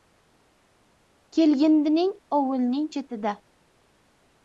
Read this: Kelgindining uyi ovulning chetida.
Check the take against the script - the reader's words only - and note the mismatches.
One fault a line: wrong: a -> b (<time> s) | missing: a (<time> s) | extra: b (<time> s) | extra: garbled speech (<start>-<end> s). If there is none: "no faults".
missing: uyi (2.1 s)